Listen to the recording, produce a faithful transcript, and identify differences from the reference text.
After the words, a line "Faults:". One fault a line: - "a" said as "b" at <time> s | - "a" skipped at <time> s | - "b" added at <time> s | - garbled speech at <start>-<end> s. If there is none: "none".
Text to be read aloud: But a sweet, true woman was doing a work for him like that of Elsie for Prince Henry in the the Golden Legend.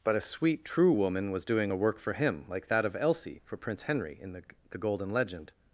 But a sweet, true woman was doing a work for him like that of Elsie for Prince Henry in the the Golden Legend.
Faults:
none